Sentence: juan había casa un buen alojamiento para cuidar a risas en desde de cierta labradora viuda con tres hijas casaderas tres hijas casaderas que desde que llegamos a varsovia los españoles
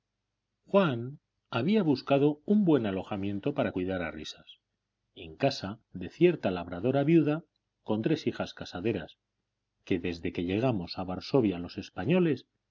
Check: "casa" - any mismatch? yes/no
yes